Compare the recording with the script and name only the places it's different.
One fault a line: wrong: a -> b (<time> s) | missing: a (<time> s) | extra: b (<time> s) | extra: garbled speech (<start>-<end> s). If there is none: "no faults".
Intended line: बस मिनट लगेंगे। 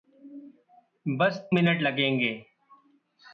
no faults